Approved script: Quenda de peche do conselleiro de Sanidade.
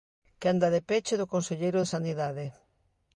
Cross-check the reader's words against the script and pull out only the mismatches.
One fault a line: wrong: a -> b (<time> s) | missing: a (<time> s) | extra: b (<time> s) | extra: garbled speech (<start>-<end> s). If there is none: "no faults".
no faults